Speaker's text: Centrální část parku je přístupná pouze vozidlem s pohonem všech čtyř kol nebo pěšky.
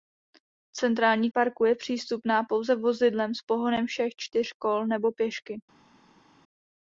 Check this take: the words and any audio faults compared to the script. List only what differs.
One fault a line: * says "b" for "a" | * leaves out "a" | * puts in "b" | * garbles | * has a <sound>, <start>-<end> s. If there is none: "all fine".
* leaves out "část"